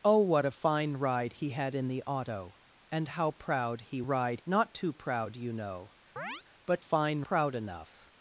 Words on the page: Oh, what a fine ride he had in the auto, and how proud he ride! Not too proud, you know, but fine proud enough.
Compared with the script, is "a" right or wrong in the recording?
right